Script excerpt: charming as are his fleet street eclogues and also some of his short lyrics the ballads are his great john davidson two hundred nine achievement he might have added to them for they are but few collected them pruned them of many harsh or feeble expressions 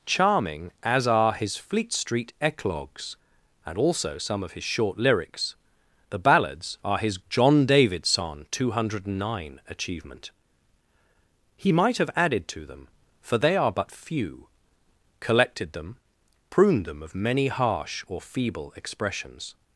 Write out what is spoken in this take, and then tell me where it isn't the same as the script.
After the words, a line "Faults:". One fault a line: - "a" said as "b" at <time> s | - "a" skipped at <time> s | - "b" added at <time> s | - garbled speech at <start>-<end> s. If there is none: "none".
charming as are his fleet street eclogues and also some of his short lyrics the ballads are his john davidson two hundred nine achievement he might have added to them for they are but few collected them pruned them of many harsh or feeble expressions
Faults:
- "great" skipped at 7.2 s